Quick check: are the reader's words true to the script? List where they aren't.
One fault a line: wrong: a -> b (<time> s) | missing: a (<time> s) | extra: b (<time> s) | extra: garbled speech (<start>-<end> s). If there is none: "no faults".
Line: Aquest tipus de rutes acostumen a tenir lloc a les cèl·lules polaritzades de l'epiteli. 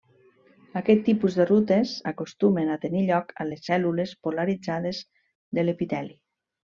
no faults